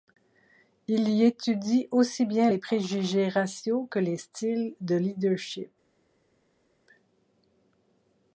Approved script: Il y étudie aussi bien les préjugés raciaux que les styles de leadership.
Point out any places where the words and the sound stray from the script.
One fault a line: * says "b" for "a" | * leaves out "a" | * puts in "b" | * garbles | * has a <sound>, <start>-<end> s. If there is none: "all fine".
all fine